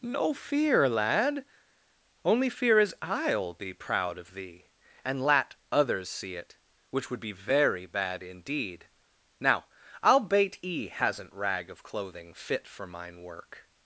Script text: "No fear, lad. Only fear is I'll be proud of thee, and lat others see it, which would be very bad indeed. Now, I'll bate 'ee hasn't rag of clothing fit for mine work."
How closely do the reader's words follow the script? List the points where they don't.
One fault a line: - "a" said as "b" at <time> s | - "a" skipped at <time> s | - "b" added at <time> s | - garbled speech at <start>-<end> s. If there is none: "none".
none